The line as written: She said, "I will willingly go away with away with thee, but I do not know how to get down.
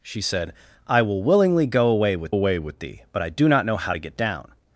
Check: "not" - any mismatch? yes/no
no